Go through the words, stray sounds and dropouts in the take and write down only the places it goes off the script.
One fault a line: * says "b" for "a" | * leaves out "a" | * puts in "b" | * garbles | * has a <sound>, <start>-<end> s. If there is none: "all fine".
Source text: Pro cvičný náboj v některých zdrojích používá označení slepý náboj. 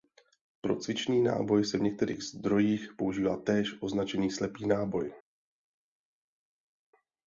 * puts in "se"
* puts in "též"